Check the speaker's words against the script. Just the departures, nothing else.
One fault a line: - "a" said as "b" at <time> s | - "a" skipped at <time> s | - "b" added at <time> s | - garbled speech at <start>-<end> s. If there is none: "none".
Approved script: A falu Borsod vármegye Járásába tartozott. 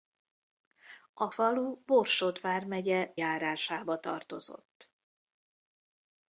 none